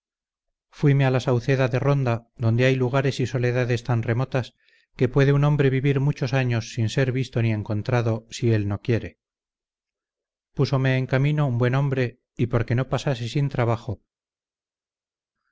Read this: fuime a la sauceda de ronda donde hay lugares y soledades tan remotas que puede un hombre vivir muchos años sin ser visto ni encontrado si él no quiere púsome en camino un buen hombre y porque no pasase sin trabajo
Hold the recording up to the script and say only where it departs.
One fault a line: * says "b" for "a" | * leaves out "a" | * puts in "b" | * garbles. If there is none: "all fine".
all fine